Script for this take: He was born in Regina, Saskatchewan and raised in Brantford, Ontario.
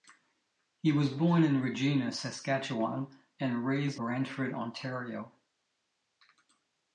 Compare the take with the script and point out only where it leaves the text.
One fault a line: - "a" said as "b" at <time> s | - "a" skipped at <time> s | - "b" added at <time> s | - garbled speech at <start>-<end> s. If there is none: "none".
- "in" skipped at 4.0 s